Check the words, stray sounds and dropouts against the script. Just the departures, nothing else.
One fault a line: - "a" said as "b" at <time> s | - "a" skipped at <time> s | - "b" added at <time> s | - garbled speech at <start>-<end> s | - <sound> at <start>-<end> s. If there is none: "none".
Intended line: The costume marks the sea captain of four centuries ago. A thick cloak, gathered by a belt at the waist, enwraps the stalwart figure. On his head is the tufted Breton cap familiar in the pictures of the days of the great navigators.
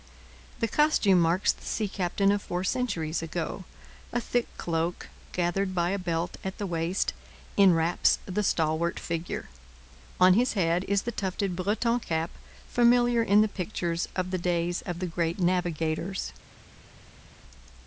none